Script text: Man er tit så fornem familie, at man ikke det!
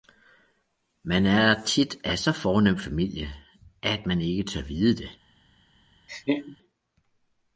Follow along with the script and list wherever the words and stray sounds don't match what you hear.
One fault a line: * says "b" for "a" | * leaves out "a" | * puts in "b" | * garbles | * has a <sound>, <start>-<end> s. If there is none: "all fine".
* puts in "af"
* puts in "tør vide"
* has a laugh, 6.1-6.6 s